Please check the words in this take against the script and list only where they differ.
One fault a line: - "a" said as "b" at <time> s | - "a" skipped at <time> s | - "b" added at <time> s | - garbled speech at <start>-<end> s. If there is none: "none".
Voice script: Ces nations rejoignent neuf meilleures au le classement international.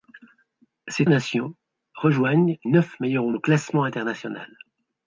none